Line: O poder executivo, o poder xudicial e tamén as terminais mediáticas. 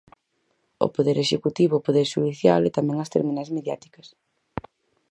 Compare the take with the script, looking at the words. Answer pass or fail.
pass